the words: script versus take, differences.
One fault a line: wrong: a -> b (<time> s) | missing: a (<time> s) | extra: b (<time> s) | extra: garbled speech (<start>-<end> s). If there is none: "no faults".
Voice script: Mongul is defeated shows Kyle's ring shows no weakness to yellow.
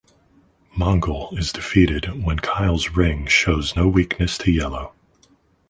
wrong: shows -> when (2.2 s)